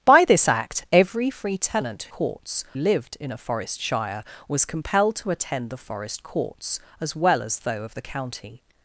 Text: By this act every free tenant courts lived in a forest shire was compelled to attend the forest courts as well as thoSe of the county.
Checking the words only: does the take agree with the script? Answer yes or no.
yes